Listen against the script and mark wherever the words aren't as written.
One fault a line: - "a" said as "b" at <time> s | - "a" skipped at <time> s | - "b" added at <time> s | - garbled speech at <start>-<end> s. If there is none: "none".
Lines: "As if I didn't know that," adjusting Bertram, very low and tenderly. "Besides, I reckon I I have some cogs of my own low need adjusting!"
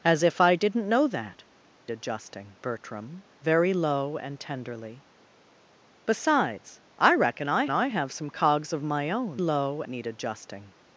none